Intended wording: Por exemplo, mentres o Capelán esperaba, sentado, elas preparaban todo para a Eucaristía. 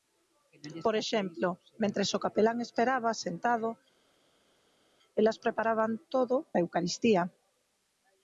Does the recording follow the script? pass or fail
fail